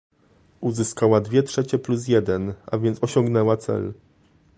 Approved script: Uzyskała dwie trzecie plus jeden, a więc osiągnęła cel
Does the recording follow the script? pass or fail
pass